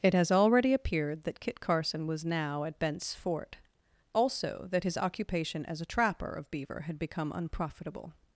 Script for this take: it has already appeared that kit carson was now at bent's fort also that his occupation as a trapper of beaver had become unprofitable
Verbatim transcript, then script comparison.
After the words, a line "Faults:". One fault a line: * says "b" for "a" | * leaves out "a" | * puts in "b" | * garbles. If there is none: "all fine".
it has already appeared that kit carson was now at bent's fort also that his occupation as a trapper of beaver had become unprofitable
Faults:
all fine